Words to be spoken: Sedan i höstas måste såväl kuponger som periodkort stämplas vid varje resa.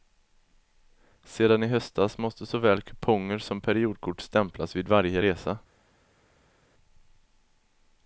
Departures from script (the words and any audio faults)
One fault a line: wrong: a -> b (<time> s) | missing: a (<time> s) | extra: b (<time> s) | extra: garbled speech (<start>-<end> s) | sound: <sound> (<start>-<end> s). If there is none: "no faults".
no faults